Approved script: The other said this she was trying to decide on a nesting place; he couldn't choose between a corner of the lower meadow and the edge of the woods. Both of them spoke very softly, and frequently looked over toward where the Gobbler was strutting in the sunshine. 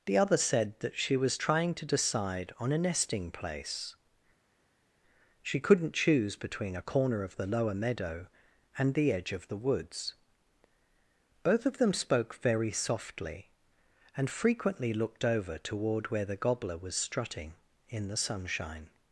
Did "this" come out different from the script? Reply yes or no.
yes